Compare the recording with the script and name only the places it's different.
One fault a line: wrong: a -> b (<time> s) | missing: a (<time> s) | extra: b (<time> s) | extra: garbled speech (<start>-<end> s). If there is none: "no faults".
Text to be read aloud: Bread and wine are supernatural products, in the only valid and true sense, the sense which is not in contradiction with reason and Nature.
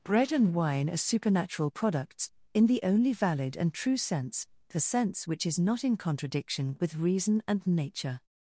no faults